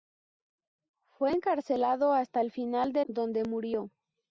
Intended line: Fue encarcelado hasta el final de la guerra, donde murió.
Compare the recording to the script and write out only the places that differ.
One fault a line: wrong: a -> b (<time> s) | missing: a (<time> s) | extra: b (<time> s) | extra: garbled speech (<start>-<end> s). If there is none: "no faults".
missing: la guerra (3.0 s)